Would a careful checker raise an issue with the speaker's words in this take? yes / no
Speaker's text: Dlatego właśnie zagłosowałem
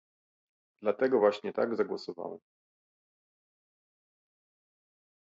yes